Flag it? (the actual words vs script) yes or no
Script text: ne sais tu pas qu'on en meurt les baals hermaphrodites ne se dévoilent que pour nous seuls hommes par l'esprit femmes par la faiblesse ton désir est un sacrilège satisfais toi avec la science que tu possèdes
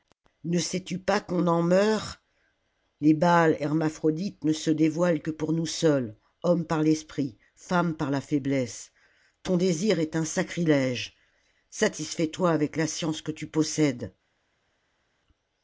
no